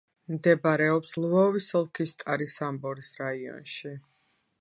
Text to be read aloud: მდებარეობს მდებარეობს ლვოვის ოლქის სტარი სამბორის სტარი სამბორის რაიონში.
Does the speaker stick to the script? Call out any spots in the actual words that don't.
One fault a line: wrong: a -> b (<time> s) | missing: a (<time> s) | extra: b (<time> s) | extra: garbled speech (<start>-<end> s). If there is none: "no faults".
missing: მდებარეობს (1.1 s)
missing: სტარი სამბორის (3.1 s)